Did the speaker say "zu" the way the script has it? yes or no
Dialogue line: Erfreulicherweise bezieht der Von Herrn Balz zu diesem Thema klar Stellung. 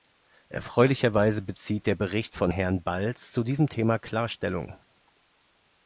yes